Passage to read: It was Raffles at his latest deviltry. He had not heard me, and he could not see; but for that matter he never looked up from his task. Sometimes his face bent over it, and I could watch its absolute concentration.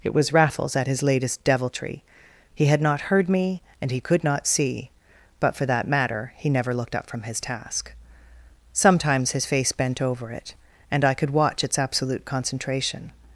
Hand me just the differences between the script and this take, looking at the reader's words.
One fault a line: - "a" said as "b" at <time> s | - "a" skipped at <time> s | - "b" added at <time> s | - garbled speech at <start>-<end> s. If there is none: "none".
none